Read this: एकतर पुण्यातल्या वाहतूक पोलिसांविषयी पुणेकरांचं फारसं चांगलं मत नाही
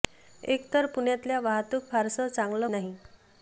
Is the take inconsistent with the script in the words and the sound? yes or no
yes